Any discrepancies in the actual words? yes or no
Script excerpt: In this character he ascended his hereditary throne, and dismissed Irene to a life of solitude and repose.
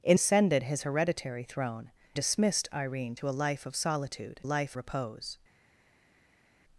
yes